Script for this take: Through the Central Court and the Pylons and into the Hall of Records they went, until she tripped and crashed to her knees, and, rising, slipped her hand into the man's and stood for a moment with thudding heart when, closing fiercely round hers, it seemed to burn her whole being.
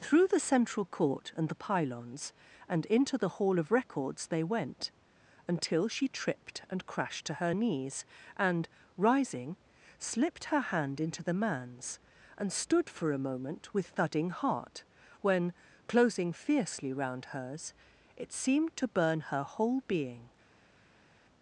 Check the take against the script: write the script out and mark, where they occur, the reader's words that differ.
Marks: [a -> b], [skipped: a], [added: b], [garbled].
Through the Central Court and the Pylons and into the Hall of Records they went, until she tripped and crashed to her knees, and, rising, slipped her hand into the man's and stood for a moment with thudding heart when, closing fiercely round hers, it seemed to burn her whole being.